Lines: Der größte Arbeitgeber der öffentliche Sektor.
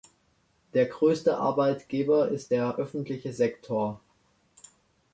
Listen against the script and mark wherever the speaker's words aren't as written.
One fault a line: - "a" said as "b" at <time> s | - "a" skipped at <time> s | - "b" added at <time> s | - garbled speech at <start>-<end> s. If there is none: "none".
- "ist" added at 2.3 s